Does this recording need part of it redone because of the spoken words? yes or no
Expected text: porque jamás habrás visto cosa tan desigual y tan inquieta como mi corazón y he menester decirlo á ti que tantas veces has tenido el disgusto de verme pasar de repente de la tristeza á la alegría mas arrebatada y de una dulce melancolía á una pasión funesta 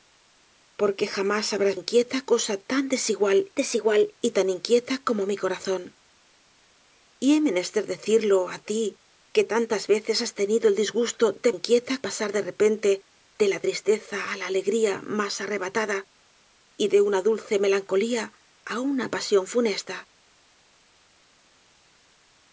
yes